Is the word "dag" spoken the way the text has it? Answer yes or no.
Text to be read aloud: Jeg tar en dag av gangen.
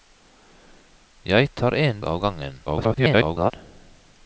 no